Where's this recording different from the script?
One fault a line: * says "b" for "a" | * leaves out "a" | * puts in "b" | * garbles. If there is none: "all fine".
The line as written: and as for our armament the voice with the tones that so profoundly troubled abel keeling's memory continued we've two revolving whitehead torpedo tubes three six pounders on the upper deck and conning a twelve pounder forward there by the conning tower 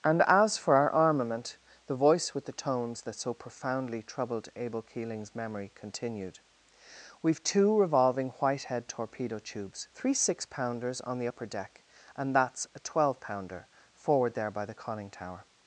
* says "that's" for "conning"